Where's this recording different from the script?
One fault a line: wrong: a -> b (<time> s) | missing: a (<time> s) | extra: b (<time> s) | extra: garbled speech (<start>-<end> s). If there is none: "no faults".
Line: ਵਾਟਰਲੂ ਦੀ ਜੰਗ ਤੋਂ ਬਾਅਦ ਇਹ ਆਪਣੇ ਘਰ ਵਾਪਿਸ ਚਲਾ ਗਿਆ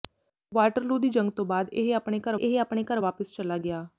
extra: ਇਹ ਆਪਣੇ ਘਰ (2.4 s)